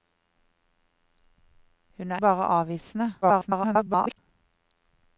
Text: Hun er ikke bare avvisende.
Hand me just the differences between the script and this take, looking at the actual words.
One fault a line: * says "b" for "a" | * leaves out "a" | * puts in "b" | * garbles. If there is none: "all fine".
* leaves out "ikke"
* garbles